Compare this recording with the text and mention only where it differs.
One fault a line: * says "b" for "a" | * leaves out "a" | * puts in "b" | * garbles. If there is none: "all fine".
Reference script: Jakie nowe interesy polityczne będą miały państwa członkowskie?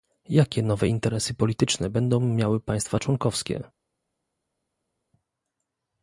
all fine